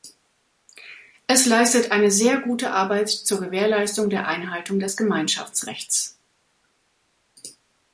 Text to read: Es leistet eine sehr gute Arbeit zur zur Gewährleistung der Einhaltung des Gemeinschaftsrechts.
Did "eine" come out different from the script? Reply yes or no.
no